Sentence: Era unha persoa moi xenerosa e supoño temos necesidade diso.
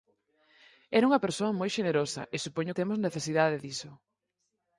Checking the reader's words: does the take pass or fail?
pass